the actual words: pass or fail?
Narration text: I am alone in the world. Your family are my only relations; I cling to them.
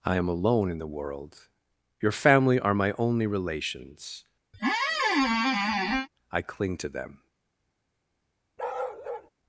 pass